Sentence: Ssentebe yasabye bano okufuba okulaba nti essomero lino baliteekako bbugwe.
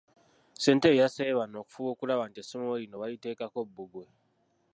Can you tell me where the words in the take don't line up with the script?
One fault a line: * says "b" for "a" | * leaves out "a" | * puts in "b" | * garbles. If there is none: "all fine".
all fine